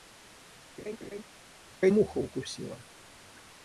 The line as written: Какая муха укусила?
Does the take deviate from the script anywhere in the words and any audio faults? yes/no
yes